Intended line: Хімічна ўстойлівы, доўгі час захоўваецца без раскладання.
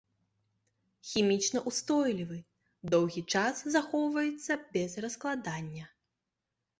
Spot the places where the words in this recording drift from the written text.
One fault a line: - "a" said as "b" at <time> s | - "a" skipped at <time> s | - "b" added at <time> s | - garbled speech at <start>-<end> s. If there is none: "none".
none